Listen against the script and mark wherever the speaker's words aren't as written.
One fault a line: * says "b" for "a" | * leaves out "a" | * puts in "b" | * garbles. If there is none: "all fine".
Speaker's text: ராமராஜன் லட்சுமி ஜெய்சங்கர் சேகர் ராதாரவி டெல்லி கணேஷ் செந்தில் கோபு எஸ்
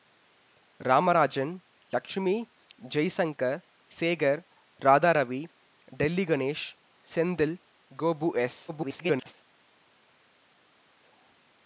* garbles